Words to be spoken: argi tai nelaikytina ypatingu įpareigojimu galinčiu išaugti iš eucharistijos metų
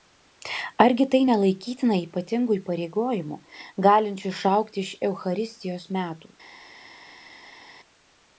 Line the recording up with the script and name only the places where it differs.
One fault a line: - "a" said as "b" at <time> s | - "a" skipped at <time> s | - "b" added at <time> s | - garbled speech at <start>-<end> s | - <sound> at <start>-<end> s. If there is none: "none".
none